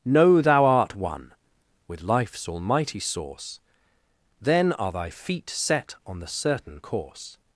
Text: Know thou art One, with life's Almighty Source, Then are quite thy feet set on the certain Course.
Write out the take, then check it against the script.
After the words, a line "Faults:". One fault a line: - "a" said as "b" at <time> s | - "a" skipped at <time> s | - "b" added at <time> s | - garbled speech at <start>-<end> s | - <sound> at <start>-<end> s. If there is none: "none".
Know thou art One, with life's Almighty Source, Then are thy feet set on the certain Course.
Faults:
- "quite" skipped at 4.9 s